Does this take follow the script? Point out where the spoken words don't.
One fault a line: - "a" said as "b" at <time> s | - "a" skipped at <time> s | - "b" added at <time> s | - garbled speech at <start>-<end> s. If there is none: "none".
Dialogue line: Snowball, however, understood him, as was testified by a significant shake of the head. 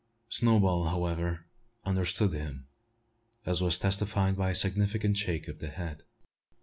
none